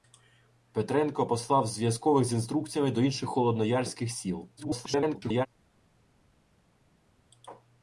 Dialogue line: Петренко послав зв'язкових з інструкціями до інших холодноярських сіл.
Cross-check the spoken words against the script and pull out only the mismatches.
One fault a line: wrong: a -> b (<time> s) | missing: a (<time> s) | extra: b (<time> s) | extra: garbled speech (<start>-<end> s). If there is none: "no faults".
extra: garbled speech (4.6-5.5 s)